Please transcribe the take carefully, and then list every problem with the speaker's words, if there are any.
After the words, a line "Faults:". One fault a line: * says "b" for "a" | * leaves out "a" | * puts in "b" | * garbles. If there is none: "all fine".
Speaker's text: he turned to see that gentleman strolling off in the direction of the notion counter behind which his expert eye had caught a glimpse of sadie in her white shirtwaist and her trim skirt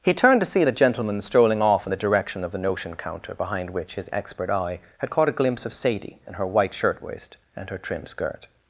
he turned to see the gentleman strolling off in the direction of the notion counter behind which his expert eye had caught a glimpse of sadie in her white shirtwaist and her trim skirt
Faults:
* says "the" for "that"